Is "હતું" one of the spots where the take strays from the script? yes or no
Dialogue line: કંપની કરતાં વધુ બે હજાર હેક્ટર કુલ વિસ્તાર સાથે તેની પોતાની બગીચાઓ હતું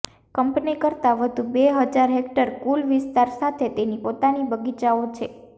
yes